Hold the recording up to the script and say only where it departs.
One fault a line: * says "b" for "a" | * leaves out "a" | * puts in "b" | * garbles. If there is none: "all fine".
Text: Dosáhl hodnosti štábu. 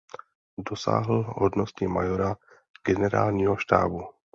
* puts in "majora generálního"